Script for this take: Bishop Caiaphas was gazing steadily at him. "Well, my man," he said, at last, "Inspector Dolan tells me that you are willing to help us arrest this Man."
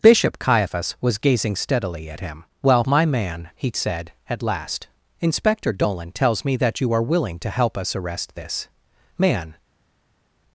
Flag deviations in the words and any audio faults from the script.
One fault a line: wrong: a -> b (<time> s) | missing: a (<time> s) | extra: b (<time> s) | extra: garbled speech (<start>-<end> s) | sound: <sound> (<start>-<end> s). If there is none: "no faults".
no faults